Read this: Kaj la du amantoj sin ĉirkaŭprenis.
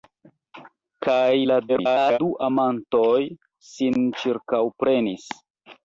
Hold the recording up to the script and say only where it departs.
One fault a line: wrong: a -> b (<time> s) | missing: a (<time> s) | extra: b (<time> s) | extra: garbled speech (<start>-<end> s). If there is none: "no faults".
extra: garbled speech (1.7-2.2 s)